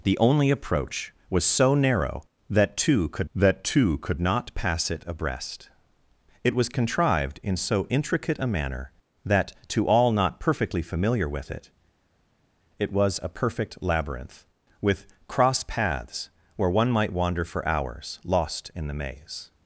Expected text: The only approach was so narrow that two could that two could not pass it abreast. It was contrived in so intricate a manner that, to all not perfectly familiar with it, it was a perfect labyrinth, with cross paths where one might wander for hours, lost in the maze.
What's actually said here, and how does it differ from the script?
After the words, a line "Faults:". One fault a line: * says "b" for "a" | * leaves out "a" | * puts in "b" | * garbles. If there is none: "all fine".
The only approach was so narrow that two could that two could not pass it abreast. It was contrived in so intricate a manner that, to all not perfectly familiar with it, it was a perfect labyrinth, with cross paths where one might wander for hours, lost in the maze.
Faults:
all fine